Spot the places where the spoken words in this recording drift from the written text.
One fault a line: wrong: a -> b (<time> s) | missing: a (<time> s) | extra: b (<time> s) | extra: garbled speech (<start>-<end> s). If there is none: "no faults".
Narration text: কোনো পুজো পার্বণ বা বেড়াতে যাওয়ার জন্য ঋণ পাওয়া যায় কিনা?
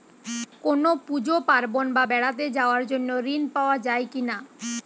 no faults